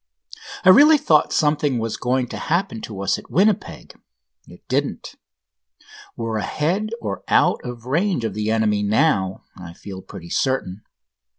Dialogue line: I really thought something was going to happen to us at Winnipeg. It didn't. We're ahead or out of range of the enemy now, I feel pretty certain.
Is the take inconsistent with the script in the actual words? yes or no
no